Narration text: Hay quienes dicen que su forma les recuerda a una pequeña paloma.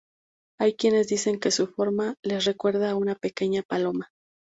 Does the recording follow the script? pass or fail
pass